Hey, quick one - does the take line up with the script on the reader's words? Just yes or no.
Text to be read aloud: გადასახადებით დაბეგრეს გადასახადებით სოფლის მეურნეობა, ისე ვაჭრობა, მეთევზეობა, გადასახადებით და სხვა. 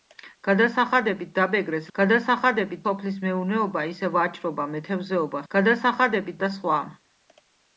yes